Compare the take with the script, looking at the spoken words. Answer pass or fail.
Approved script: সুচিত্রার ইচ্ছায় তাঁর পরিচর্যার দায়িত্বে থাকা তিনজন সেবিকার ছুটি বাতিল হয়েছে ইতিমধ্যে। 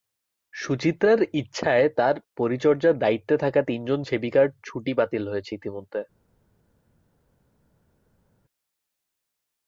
pass